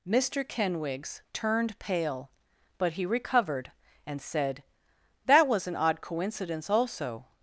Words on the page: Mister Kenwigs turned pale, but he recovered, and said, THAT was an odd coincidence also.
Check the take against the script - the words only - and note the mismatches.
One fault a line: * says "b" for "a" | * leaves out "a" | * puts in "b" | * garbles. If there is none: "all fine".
all fine